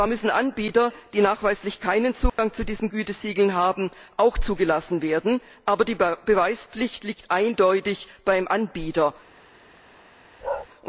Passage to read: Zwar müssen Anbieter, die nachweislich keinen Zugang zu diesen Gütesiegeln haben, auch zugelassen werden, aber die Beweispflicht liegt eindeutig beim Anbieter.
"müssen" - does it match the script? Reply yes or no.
yes